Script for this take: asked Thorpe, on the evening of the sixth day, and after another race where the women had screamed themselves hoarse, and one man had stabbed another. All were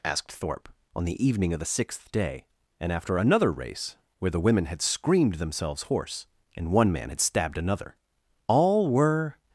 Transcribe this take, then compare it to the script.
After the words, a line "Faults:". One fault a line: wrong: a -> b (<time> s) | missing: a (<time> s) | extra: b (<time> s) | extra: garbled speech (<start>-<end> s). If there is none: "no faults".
asked Thorpe, on the evening of the sixth day, and after another race where the women had screamed themselves hoarse, and one man had stabbed another. All were
Faults:
no faults